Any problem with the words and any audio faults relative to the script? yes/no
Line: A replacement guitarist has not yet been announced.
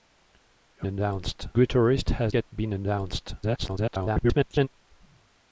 yes